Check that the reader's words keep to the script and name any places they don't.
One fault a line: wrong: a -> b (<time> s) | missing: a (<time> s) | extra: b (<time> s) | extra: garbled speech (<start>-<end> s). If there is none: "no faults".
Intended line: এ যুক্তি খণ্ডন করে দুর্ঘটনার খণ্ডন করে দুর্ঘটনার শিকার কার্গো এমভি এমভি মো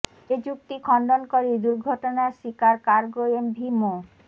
missing: খণ্ডন করে দুর্ঘটনার (2.3 s)
missing: এমভি (3.7 s)